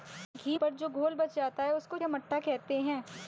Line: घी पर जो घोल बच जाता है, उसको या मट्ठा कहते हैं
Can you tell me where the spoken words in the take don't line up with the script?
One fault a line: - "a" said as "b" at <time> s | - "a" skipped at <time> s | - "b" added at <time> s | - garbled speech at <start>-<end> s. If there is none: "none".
none